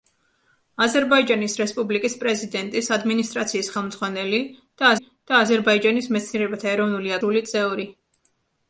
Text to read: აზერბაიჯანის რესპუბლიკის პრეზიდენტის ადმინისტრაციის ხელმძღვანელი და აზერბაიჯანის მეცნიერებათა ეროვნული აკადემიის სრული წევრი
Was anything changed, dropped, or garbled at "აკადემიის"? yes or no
yes